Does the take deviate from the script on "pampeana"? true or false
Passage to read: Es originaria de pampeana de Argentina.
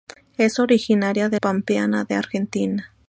false